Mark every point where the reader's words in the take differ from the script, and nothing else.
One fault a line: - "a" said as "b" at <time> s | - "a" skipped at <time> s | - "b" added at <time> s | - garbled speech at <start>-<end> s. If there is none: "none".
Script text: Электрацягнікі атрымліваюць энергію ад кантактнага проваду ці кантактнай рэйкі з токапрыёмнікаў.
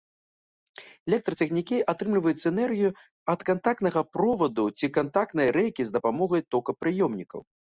- "дапамогай" added at 6.0 s